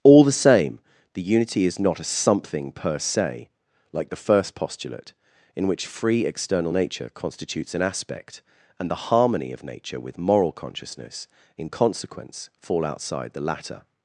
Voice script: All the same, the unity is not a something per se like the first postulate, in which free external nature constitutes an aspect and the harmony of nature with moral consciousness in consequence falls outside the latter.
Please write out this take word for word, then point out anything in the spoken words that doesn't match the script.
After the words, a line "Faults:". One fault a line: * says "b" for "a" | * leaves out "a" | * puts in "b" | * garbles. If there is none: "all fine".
All the same, the unity is not a something per se like the first postulate, in which free external nature constitutes an aspect and the harmony of nature with moral consciousness in consequence fall outside the latter.
Faults:
* says "fall" for "falls"